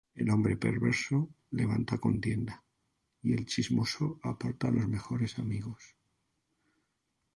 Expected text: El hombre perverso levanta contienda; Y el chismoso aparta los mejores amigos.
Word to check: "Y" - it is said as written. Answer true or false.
true